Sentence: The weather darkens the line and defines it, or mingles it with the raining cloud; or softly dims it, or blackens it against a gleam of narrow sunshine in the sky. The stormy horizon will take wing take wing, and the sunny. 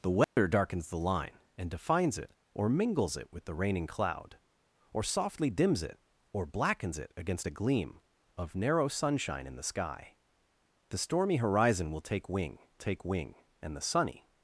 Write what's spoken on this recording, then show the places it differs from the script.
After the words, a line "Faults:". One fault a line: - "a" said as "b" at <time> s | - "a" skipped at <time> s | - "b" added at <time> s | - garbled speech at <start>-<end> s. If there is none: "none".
The weather darkens the line and defines it, or mingles it with the raining cloud; or softly dims it, or blackens it against a gleam of narrow sunshine in the sky. The stormy horizon will take wing take wing, and the sunny.
Faults:
none